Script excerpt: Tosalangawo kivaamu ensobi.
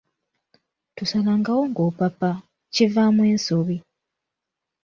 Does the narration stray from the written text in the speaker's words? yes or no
yes